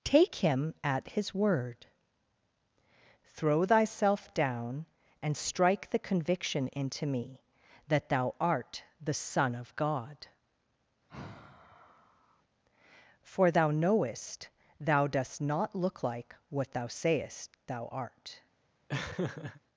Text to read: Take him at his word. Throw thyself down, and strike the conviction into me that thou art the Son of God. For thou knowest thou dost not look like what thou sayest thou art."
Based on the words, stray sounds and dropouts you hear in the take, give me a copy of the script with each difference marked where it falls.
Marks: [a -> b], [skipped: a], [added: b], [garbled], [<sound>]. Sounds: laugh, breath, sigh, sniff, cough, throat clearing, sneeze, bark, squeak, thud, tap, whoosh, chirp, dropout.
Take him at his word. Throw thyself down, and strike the conviction into me that thou art the Son of God. [sigh] For thou knowest thou dost not look like what thou sayest thou art." [laugh]